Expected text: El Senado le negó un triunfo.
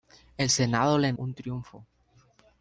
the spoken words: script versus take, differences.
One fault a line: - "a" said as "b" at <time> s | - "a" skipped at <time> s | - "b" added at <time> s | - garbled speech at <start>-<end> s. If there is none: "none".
- "negó" skipped at 1.1 s